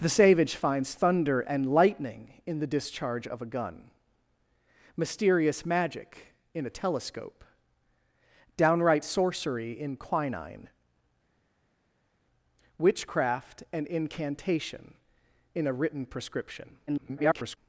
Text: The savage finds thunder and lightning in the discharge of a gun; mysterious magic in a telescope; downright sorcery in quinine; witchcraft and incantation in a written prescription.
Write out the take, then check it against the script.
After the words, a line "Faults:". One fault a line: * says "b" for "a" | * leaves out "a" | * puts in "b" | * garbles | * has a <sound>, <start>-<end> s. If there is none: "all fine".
The savage finds thunder and lightning in the discharge of a gun; mysterious magic in a telescope; downright sorcery in quinine; witchcraft and incantation in a written prescription. [garbled]
Faults:
* garbles